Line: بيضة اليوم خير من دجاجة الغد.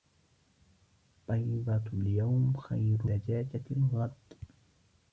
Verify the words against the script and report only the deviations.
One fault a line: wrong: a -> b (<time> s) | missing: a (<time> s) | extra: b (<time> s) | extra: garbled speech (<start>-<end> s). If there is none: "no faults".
missing: من (3.1 s)